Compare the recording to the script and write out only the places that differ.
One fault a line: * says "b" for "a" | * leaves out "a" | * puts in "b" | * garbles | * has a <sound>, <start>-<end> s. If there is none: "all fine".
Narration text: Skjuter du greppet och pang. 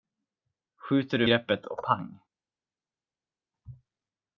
all fine